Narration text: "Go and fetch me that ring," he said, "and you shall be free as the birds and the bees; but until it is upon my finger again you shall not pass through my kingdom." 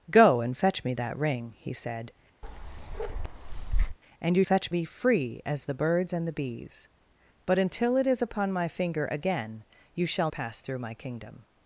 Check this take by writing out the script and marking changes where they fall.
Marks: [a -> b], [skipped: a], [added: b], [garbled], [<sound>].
"Go and fetch me that ring," he said, [bark] "and you [shall -> fetch] be free as the birds and the bees; but until it is upon my finger again you shall [skipped: not] pass through my kingdom."